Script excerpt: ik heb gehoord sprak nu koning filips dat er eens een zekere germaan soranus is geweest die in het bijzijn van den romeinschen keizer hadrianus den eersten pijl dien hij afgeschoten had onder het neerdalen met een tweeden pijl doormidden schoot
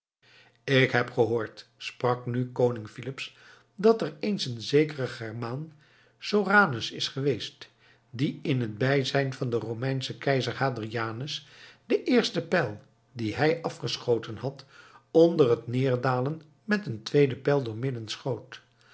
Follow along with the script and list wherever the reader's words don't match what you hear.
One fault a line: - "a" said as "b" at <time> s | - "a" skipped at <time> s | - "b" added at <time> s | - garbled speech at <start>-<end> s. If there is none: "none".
none